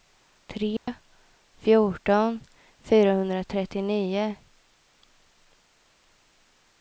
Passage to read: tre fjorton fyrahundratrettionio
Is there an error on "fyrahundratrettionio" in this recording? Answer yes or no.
no